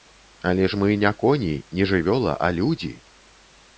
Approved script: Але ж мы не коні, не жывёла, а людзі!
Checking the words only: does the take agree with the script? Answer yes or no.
yes